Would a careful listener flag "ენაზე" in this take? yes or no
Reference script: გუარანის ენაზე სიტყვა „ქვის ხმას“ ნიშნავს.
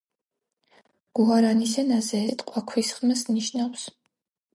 no